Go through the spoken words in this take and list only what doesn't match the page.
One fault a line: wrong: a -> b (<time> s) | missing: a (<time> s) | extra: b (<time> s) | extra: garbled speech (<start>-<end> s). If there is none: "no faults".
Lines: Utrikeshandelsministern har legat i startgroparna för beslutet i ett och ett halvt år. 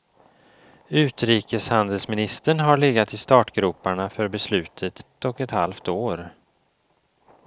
missing: i (5.0 s)